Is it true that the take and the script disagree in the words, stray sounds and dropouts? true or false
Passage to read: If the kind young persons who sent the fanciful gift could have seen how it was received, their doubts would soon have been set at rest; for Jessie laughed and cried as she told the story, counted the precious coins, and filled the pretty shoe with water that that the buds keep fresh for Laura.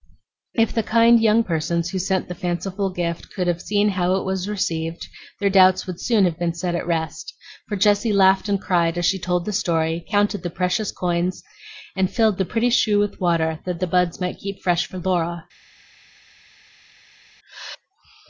true